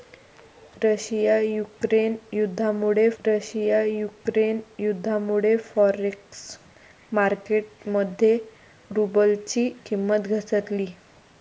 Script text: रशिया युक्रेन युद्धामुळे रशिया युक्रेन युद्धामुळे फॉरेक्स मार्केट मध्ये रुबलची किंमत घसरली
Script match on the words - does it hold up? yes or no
yes